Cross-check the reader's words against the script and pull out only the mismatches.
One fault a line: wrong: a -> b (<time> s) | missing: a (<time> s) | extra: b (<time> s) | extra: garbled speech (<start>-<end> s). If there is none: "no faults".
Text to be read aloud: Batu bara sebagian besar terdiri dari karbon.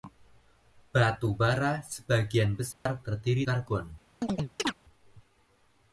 missing: dari (3.5 s)